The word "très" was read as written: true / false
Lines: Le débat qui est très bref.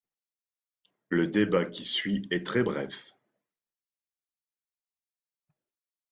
true